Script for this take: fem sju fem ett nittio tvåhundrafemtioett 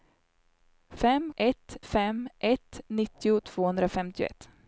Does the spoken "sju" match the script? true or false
false